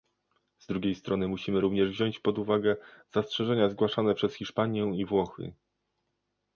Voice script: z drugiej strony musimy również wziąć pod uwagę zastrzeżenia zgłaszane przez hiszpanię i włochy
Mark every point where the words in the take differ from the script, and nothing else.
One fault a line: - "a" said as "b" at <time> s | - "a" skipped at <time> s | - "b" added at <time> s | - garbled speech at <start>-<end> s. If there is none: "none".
none